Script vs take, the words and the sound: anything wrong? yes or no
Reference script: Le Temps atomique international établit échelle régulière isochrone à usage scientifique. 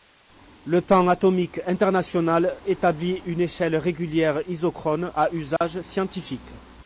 yes